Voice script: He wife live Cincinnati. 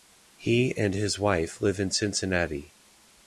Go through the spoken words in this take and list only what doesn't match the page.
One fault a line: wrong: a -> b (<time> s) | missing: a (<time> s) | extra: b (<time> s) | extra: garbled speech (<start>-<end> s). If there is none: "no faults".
extra: and his (0.8 s)
extra: in (1.8 s)